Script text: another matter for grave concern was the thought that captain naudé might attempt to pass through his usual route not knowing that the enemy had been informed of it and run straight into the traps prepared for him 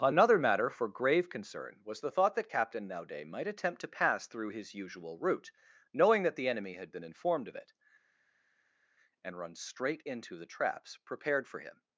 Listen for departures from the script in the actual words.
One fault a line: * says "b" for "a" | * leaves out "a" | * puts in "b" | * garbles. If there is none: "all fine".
* leaves out "not"